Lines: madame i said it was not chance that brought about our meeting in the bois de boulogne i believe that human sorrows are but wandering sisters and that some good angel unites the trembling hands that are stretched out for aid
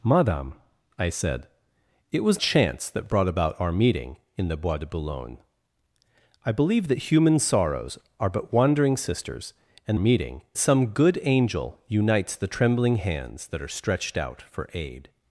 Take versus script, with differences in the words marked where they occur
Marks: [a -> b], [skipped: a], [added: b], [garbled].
madame i said it was [skipped: not] chance that brought about our meeting in the bois de boulogne i believe that human sorrows are but wandering sisters and [that -> meeting] some good angel unites the trembling hands that are stretched out for aid